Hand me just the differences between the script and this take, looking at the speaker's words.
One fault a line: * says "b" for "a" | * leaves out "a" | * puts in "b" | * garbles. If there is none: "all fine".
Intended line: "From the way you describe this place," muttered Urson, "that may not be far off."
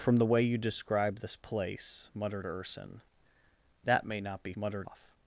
* says "muttered" for "far"